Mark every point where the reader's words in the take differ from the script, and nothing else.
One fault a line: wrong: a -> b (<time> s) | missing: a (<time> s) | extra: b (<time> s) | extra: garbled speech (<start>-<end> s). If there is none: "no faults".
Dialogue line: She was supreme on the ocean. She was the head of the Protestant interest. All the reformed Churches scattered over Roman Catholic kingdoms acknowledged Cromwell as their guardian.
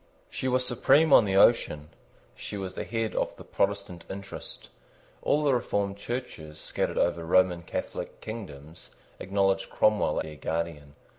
missing: as (10.2 s)